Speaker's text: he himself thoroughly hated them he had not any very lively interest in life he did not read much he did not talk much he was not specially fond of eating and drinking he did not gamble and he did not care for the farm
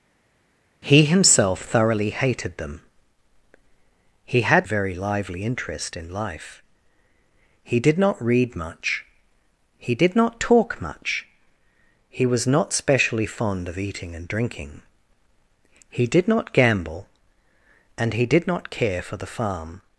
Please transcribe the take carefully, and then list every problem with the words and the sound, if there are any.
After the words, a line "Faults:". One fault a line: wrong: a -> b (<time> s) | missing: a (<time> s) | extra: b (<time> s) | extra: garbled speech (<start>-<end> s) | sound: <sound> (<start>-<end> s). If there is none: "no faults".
he himself thoroughly hated them he had very lively interest in life he did not read much he did not talk much he was not specially fond of eating and drinking he did not gamble and he did not care for the farm
Faults:
missing: not any (4.7 s)